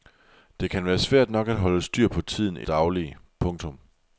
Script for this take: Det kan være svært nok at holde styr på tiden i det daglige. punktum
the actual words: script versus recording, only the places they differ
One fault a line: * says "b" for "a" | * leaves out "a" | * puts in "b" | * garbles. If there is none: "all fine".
* leaves out "det"